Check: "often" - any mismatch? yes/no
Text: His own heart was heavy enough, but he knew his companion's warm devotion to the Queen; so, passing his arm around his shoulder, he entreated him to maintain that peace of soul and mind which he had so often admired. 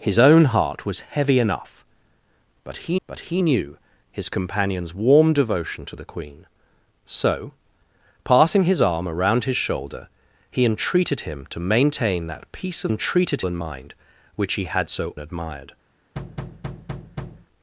yes